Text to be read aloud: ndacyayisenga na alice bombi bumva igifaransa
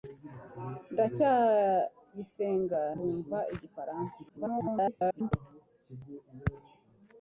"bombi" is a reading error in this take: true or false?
true